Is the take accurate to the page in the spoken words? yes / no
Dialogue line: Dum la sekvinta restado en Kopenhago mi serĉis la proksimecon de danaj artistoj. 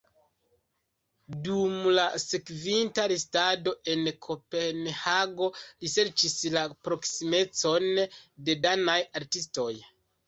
no